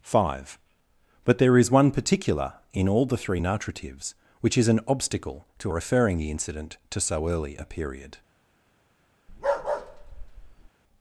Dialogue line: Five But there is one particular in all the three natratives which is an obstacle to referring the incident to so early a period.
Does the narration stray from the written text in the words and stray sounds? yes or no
yes